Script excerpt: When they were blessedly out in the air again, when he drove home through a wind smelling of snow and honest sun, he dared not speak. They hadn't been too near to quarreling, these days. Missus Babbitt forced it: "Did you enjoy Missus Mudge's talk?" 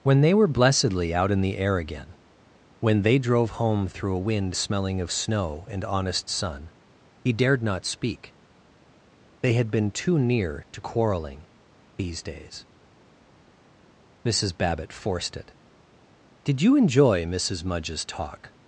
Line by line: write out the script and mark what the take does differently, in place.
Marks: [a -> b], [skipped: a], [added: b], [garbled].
When they were blessedly out in the air again, when [he -> they] drove home through a wind smelling of snow and honest sun, he dared not speak. They [hadn't -> had] been too near to quarreling, these days. Missus Babbitt forced it: "Did you enjoy Missus Mudge's talk?"